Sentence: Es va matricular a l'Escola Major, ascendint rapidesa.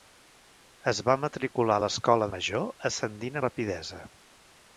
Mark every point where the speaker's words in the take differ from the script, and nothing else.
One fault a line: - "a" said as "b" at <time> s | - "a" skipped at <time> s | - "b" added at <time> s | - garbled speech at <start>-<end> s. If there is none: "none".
none